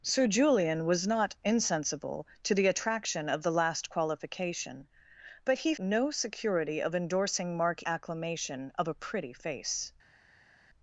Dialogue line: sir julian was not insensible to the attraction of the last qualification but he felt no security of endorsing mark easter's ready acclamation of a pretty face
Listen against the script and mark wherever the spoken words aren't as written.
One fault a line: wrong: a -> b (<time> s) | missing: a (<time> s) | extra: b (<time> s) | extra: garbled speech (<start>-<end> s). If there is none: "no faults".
missing: felt (5.8 s)
missing: easter's ready (7.8 s)